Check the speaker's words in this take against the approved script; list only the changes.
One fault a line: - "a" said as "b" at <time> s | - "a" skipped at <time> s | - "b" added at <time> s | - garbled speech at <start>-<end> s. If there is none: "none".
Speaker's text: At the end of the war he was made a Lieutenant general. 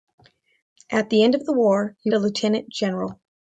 - "was made" skipped at 2.1 s